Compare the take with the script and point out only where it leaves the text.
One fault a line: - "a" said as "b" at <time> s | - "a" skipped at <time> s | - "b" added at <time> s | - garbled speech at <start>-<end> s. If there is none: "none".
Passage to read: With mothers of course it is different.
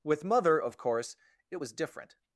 - "mothers" said as "mother" at 0.2 s
- "is" said as "was" at 1.6 s